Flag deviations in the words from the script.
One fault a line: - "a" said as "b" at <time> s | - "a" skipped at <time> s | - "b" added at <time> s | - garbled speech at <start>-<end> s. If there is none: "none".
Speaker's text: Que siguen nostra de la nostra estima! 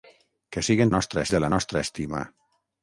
none